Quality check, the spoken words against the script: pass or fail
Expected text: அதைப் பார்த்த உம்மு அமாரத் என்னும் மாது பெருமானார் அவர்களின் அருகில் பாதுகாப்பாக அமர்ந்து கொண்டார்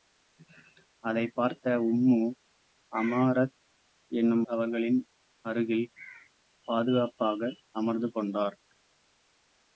fail